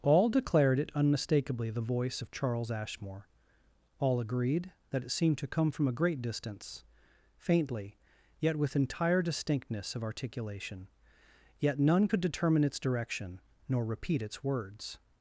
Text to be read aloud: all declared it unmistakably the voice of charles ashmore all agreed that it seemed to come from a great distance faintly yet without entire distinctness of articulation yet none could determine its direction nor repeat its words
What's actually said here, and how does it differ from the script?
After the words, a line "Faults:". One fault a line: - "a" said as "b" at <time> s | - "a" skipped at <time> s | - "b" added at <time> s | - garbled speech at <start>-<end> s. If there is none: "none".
all declared it unmistakably the voice of charles ashmore all agreed that it seemed to come from a great distance faintly yet with entire distinctness of articulation yet none could determine its direction nor repeat its words
Faults:
- "without" said as "with" at 8.6 s